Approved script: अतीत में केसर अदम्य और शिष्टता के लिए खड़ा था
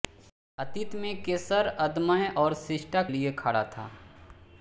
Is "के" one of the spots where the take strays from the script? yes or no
yes